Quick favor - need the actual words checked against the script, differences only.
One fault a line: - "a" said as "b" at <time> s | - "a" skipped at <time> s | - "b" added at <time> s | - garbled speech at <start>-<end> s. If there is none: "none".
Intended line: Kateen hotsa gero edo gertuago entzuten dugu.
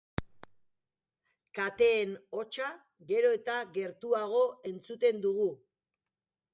- "edo" said as "eta" at 3.4 s